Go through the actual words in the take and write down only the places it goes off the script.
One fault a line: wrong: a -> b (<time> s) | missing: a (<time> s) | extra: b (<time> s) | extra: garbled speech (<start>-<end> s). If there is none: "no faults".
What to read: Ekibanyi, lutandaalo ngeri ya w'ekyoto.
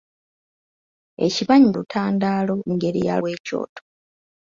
no faults